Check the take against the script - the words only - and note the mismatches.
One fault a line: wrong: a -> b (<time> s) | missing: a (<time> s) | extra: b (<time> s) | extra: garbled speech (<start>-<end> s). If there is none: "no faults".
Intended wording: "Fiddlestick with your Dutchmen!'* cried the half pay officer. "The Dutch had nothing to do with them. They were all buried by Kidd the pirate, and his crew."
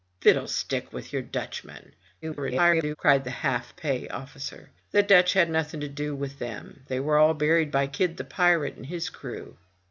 extra: garbled speech (2.2-3.0 s)